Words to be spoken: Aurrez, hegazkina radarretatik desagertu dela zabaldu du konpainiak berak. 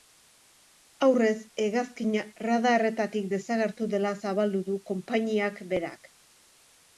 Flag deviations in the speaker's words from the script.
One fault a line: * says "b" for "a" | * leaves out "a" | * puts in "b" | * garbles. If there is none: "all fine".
all fine